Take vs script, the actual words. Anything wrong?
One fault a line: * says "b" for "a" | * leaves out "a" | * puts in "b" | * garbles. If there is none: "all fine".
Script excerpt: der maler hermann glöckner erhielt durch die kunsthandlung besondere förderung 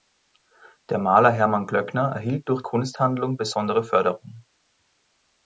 * leaves out "die"